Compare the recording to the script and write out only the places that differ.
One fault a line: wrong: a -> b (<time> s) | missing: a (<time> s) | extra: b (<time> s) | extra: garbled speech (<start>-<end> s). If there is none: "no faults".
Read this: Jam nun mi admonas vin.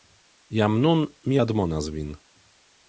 no faults